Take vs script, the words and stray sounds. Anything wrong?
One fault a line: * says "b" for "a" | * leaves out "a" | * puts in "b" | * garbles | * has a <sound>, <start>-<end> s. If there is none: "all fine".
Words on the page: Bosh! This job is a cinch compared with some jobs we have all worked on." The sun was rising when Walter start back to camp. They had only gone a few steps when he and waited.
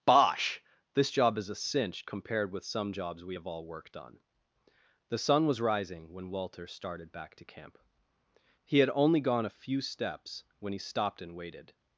* says "started" for "start"
* says "He" for "They"
* puts in "stopped"